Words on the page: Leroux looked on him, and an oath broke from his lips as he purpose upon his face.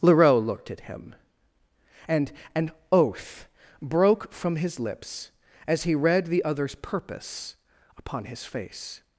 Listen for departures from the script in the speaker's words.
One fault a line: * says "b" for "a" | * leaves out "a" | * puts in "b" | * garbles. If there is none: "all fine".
* says "at" for "on"
* puts in "read the other's"